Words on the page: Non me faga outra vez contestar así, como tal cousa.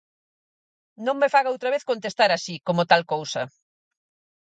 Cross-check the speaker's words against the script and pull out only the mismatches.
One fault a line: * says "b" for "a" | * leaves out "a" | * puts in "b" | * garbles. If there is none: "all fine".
all fine